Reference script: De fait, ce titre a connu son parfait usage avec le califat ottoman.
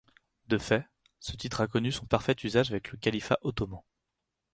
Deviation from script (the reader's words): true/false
false